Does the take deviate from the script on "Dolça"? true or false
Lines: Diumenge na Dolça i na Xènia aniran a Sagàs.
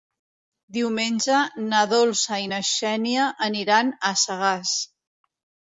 false